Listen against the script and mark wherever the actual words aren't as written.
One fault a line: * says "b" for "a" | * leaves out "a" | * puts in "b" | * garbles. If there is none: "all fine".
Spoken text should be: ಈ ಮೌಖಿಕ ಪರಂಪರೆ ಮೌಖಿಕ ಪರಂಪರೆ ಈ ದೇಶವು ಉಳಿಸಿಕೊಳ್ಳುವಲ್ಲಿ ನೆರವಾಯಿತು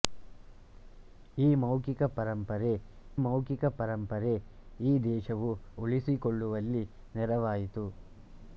all fine